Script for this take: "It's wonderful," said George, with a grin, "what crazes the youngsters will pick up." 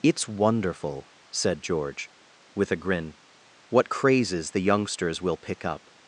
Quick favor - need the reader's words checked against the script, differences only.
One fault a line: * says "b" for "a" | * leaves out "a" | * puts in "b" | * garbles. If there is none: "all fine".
all fine